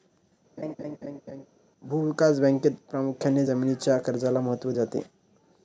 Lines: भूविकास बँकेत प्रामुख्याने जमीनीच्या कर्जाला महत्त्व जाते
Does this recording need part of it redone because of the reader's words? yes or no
no